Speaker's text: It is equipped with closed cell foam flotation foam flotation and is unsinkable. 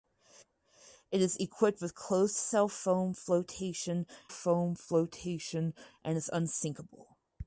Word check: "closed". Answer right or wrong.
right